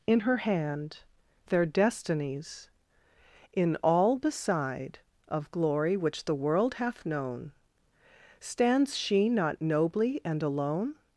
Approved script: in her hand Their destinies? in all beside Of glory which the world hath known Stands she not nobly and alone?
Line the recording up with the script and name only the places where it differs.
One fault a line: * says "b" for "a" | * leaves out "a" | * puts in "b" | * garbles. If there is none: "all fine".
all fine